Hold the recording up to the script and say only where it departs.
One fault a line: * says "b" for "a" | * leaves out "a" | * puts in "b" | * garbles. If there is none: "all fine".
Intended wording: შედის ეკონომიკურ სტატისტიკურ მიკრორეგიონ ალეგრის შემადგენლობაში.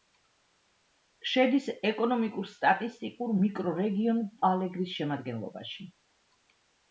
all fine